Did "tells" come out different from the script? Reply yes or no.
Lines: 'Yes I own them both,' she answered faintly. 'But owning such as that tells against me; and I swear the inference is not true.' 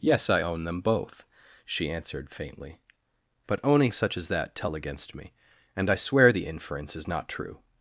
yes